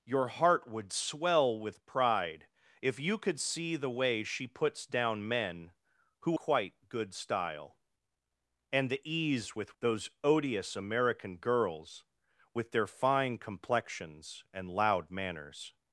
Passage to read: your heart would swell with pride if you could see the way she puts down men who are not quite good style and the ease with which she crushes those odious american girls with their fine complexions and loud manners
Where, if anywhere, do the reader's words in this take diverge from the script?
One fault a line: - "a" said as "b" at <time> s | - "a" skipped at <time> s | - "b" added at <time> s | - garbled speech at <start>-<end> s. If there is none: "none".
- "are not" skipped at 6.4 s
- "which she crushes" skipped at 9.7 s